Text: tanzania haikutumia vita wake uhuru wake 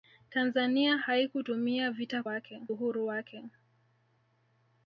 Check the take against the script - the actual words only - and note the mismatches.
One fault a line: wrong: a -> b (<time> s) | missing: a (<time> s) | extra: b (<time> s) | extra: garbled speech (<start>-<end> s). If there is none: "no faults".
no faults